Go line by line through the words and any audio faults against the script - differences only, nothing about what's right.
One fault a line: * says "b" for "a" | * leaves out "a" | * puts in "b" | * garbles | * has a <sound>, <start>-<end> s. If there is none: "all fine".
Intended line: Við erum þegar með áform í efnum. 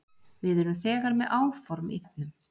all fine